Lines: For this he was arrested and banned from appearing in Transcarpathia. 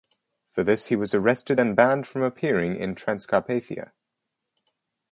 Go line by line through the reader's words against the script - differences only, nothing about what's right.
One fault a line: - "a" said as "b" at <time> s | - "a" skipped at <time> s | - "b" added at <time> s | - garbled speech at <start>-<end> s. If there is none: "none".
none